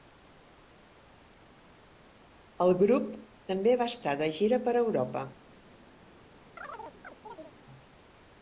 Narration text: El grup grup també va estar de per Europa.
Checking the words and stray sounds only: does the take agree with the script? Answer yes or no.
no